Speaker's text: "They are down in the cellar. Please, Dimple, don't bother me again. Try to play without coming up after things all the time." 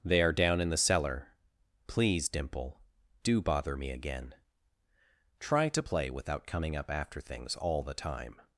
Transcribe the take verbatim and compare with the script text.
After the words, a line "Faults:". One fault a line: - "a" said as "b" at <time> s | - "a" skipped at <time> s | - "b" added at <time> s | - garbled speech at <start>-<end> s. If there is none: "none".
"They are down in the cellar. Please, Dimple, do bother me again. Try to play without coming up after things all the time."
Faults:
- "don't" said as "do" at 3.2 s